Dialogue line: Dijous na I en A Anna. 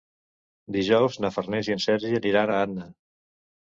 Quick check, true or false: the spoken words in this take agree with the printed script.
false